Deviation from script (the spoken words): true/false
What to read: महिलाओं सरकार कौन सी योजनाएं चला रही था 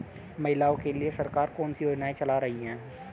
true